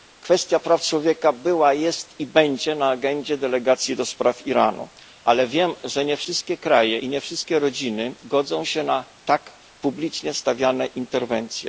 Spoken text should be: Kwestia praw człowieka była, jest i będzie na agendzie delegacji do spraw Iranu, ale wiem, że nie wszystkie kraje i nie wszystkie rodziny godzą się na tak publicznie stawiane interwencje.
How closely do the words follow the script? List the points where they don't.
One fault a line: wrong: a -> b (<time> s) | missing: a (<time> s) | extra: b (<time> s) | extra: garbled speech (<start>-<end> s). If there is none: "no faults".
no faults